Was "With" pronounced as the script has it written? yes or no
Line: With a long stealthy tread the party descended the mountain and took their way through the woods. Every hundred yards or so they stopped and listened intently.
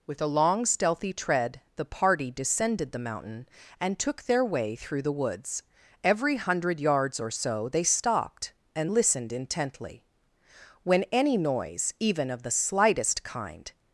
yes